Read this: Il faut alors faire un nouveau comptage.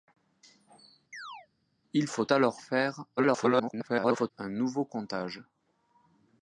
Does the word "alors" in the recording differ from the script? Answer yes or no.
no